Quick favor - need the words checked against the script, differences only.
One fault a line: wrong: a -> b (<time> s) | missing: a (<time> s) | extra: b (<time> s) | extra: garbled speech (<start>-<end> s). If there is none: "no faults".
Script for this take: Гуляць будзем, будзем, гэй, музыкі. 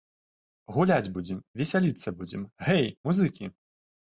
extra: весяліцца (1.6 s)